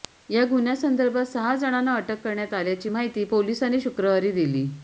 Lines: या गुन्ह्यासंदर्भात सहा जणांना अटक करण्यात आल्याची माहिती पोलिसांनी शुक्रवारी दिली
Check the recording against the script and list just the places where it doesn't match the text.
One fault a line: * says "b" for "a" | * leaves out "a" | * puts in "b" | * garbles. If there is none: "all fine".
all fine